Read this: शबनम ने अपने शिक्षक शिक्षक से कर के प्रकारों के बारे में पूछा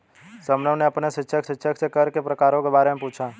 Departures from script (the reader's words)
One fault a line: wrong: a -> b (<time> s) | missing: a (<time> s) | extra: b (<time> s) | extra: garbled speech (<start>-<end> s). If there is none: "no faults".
no faults